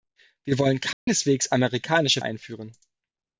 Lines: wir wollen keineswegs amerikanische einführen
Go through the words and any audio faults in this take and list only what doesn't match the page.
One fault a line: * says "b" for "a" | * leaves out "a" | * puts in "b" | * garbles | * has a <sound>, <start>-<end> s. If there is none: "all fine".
* has a dropout, 0.9-1.1 s